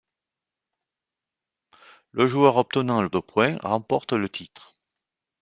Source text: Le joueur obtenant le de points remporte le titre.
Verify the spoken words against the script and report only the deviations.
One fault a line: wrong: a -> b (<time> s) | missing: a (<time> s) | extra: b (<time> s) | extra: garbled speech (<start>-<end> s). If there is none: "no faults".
no faults